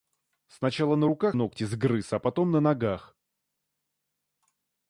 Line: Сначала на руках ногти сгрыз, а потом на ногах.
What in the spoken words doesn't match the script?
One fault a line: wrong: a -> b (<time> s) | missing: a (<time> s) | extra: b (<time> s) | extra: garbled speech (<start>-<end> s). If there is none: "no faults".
no faults